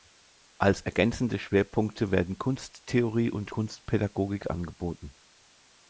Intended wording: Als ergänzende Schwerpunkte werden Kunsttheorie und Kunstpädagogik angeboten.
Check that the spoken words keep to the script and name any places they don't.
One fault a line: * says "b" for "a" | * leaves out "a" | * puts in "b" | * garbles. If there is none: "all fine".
all fine